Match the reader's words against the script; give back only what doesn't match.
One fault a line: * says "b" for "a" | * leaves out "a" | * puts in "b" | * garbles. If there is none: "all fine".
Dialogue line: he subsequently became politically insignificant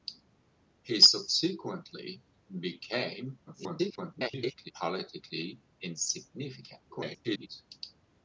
* garbles
* garbles